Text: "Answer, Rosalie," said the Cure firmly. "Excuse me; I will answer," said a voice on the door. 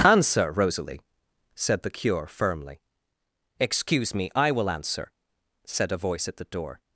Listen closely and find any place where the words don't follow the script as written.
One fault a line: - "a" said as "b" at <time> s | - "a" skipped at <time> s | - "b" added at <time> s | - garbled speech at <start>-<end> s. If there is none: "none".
- "on" said as "at" at 6.3 s